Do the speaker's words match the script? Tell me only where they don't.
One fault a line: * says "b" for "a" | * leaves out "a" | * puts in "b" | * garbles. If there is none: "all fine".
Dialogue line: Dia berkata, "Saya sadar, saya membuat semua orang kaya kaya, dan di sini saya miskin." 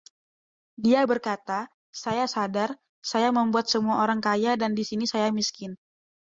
* leaves out "kaya"